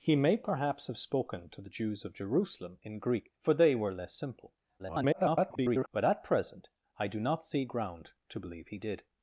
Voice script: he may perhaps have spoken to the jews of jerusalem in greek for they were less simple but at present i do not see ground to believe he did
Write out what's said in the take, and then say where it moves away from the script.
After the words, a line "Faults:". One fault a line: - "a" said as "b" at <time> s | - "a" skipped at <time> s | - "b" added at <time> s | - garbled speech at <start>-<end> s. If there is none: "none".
he may perhaps have spoken to the jews of jerusalem in greek for they were less simple [garbled] but at present i do not see ground to believe he did
Faults:
- garbled speech at 4.8-5.9 s